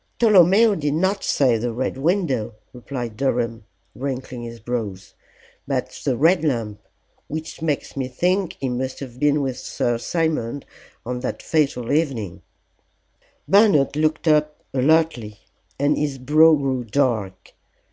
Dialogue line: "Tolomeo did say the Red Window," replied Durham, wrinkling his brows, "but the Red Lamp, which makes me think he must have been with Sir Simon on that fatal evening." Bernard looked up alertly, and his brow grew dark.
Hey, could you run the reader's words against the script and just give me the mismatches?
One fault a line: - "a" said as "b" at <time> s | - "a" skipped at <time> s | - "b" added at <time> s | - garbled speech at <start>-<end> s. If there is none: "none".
- "not" added at 0.9 s